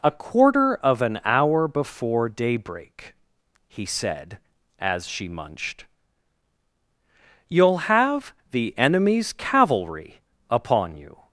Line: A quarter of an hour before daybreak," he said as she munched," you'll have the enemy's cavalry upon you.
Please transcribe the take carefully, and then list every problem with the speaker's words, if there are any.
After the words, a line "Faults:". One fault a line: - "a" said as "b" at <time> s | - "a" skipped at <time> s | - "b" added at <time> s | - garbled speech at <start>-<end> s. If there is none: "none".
A quarter of an hour before daybreak," he said as she munched," you'll have the enemy's cavalry upon you.
Faults:
none